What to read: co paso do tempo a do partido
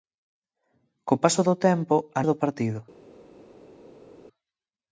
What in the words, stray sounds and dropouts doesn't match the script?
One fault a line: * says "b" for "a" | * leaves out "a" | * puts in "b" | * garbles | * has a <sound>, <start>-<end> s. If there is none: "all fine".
all fine